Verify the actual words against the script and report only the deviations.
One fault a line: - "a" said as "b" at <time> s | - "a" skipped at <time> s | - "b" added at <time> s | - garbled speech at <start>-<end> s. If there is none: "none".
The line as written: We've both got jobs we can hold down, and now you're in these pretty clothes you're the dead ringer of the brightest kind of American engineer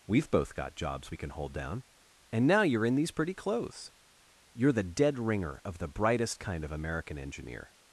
none